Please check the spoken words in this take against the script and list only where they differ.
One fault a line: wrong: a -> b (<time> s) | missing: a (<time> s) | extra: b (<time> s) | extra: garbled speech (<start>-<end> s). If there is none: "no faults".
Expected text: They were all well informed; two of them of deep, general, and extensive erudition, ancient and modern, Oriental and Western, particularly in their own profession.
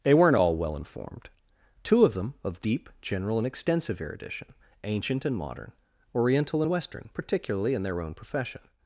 wrong: were -> weren't (0.1 s)